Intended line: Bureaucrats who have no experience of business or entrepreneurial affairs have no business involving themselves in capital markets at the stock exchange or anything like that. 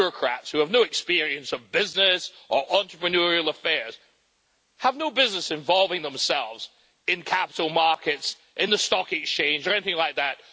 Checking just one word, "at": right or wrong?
wrong